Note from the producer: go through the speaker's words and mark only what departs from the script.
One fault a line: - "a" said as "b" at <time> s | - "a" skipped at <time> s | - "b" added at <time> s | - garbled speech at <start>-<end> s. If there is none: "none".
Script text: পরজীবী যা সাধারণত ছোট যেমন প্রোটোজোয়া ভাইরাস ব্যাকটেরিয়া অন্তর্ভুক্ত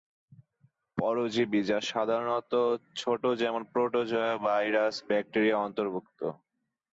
none